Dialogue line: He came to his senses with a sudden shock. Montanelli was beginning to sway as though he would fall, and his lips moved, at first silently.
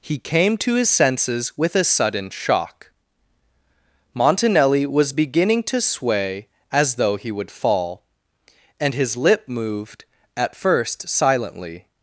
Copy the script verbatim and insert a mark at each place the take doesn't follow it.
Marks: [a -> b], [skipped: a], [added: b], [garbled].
He came to his senses with a sudden shock. Montanelli was beginning to sway as though he would fall, and his [lips -> lip] moved, at first silently.